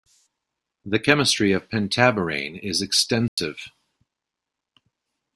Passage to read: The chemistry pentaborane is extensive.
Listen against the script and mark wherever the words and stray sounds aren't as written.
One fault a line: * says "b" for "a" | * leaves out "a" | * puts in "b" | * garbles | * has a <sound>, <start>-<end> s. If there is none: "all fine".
* puts in "of"
* has a dropout, 3.3-3.4 s